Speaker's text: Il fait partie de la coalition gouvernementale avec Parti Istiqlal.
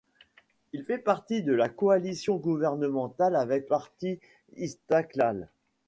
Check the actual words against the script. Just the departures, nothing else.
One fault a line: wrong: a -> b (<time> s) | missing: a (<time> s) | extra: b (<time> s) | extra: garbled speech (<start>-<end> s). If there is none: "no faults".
no faults